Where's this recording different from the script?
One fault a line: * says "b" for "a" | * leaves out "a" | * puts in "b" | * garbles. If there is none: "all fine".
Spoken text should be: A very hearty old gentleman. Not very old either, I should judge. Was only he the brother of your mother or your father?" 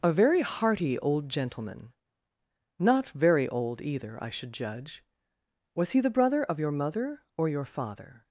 * leaves out "only"